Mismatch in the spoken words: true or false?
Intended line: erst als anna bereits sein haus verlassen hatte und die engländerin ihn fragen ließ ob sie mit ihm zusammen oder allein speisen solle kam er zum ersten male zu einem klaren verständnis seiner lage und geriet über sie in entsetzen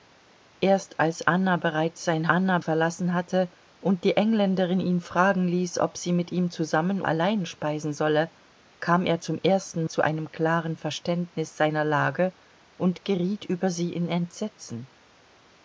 true